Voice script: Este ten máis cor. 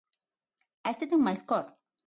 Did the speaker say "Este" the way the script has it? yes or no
yes